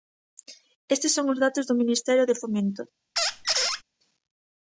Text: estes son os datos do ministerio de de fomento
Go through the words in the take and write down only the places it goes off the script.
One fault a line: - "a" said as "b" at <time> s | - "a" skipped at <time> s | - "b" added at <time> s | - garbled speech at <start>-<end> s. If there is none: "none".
- "de" skipped at 2.4 s